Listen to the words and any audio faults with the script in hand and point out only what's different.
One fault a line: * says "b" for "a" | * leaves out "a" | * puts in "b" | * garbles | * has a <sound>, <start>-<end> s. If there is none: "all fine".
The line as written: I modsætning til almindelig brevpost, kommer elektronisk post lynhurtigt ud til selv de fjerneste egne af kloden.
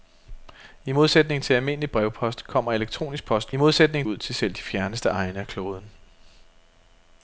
* says "modsætning" for "lynhurtigt"